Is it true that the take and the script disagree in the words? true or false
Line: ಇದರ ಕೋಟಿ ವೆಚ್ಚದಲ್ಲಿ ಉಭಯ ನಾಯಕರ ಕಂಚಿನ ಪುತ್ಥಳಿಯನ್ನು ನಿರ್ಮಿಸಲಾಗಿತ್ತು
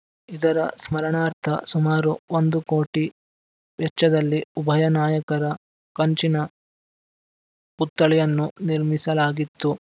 true